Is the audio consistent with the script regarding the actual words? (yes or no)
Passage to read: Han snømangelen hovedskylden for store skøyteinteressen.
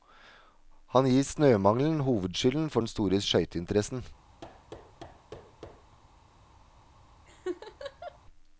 no